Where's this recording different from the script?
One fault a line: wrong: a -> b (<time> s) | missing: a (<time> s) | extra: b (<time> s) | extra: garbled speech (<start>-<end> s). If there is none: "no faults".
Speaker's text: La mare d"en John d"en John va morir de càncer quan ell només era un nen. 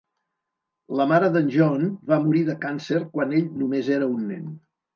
missing: d"en John (1.9 s)